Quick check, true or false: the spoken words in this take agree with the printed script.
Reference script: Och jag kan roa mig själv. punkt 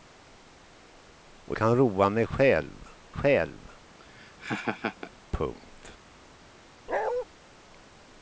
false